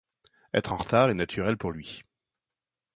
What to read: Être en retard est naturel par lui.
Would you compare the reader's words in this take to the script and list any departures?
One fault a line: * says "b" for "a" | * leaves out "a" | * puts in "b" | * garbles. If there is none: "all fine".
* says "pour" for "par"